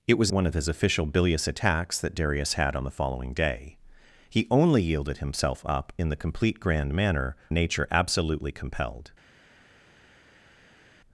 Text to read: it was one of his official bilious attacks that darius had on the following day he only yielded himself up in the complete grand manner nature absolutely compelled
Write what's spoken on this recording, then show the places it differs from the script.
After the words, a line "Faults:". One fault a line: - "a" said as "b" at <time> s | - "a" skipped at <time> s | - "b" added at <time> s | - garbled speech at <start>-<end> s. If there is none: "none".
it was one of his official bilious attacks that darius had on the following day he only yielded himself up in the complete grand manner nature absolutely compelled
Faults:
none